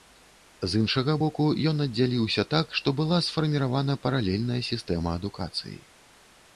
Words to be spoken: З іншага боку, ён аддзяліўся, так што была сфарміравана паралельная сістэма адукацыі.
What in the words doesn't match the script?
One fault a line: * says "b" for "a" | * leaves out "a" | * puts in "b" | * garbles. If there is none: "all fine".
all fine